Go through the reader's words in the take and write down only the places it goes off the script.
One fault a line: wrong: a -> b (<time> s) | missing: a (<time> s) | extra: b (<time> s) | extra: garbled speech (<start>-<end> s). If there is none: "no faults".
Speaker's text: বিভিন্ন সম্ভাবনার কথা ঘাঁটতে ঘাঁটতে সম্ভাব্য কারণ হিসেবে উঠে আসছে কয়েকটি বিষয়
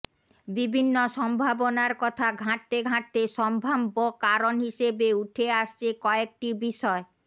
no faults